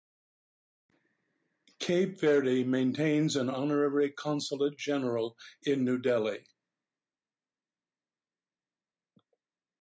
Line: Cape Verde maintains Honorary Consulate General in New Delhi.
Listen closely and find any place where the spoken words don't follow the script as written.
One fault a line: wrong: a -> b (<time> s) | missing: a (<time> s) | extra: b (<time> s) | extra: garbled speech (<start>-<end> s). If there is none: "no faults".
extra: an (3.4 s)